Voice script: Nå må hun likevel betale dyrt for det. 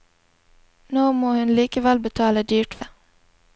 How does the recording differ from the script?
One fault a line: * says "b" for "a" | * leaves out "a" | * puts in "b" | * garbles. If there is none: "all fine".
* leaves out "for"